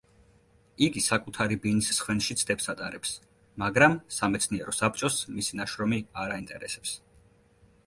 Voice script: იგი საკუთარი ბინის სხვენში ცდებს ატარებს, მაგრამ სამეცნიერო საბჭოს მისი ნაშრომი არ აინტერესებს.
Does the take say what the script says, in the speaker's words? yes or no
yes